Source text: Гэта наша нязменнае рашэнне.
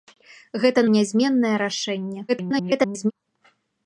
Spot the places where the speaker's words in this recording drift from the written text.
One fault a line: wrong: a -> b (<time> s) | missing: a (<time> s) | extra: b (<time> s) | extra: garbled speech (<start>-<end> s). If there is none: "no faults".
missing: наша (0.8 s)
extra: garbled speech (2.3-3.1 s)